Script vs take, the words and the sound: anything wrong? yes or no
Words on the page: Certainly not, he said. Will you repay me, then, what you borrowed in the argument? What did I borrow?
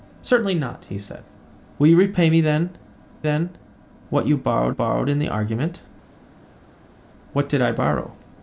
yes